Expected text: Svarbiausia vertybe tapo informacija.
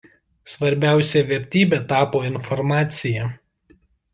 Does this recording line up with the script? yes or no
yes